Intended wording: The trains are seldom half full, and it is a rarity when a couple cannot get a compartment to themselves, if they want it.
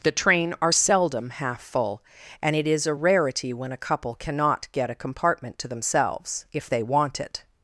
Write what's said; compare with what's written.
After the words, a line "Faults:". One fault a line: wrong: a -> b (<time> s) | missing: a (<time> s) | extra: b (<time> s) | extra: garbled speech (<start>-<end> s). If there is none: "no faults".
The train are seldom half full, and it is a rarity when a couple cannot get a compartment to themselves, if they want it.
Faults:
wrong: trains -> train (0.1 s)